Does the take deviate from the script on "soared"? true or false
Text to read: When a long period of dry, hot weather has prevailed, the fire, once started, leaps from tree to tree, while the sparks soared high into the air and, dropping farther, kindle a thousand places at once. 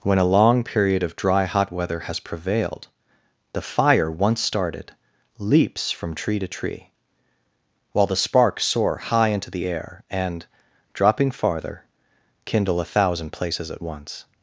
true